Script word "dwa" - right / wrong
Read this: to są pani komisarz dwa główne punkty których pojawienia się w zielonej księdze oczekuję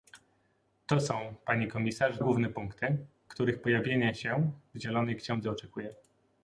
wrong